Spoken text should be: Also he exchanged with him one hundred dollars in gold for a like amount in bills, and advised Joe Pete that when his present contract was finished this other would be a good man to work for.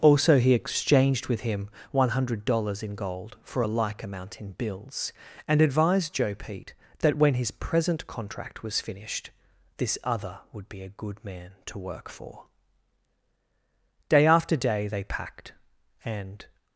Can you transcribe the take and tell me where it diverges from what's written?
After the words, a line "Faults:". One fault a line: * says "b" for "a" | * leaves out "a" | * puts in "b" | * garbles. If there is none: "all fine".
Also he exchanged with him one hundred dollars in gold for a like amount in bills, and advised Joe Pete that when his present contract was finished this other would be a good man to work for. Day after day they packed, and
Faults:
* puts in "Day after day they packed and"